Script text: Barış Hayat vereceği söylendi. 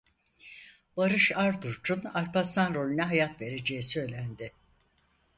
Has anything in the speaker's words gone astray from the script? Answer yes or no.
yes